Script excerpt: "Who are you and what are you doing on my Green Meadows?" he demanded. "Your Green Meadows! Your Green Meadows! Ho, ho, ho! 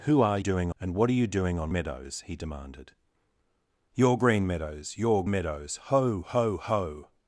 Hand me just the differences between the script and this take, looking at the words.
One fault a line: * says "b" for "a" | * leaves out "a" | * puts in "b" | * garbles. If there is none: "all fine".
* says "doing" for "you"
* leaves out "my Green"
* leaves out "Green"